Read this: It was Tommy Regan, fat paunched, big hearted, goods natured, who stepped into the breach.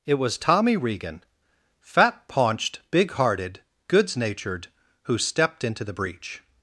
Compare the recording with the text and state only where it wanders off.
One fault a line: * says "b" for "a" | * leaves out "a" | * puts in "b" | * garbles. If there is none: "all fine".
all fine